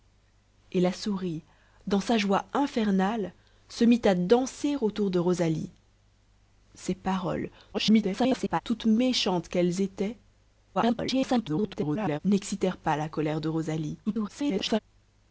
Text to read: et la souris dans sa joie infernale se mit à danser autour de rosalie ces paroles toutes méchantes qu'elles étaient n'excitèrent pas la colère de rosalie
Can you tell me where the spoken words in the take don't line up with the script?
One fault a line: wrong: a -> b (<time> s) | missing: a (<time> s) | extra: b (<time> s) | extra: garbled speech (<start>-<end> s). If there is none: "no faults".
extra: garbled speech (7.7-8.6 s)
extra: garbled speech (10.7-12.2 s)
extra: garbled speech (14.1-14.8 s)